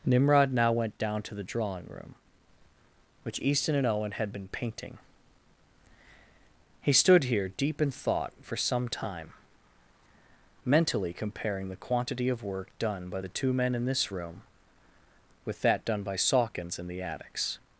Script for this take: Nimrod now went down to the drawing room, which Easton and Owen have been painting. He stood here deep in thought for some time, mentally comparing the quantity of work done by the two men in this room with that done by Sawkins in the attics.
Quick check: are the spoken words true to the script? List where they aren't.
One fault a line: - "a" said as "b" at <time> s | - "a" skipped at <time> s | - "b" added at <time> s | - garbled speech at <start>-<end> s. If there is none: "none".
- "have" said as "had" at 4.1 s